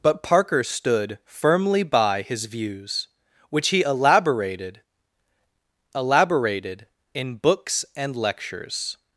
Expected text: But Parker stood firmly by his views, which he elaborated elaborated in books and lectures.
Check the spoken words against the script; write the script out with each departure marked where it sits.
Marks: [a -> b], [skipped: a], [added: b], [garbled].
But Parker stood firmly by his views, which he elaborated elaborated in books and lectures.